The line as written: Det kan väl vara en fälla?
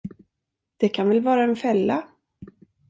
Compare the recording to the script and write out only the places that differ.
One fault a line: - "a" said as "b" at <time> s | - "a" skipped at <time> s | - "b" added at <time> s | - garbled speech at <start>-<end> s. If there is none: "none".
none